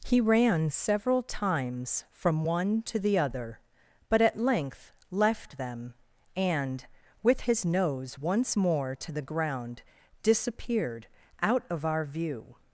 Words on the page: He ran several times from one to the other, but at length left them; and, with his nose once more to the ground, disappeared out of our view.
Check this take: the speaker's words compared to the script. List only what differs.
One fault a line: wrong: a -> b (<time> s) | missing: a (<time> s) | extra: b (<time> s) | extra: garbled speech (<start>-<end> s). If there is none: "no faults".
no faults